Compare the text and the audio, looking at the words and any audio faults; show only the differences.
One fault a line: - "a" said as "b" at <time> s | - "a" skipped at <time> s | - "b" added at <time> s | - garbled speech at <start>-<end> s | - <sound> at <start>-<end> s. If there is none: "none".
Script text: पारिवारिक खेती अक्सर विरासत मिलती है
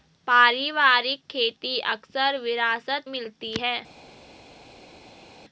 none